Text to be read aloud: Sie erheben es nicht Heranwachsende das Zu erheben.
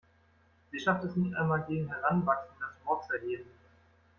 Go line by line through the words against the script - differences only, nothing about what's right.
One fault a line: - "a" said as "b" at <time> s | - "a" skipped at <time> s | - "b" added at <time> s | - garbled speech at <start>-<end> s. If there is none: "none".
- "erheben" said as "schafft" at 0.8 s
- "einmal gegen" added at 1.4 s
- "Wort" added at 2.9 s